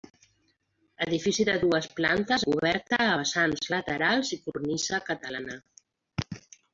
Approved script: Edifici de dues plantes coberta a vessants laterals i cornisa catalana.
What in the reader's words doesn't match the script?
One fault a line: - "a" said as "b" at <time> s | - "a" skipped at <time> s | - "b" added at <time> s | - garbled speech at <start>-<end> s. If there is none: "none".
none